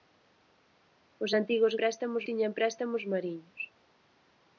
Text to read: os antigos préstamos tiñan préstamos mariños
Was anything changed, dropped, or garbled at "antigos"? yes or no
no